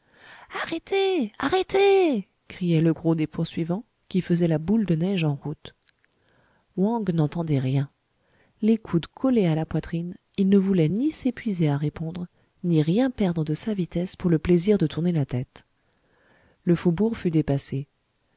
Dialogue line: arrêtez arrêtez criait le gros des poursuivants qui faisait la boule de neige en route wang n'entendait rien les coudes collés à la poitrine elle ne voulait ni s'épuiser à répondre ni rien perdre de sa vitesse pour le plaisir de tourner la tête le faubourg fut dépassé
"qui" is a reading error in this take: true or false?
false